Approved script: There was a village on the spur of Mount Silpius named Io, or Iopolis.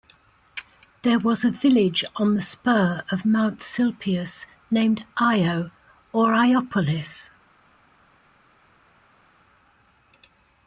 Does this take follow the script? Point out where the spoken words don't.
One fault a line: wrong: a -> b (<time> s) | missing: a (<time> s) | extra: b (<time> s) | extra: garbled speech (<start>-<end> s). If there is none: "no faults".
no faults